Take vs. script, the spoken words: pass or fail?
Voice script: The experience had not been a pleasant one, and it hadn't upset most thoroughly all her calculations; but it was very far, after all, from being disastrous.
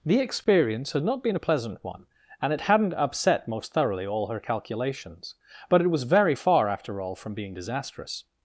pass